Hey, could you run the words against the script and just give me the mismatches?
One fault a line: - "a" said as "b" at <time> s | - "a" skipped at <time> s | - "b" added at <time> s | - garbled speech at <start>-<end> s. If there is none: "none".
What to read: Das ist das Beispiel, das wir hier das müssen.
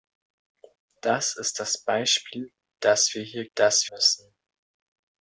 none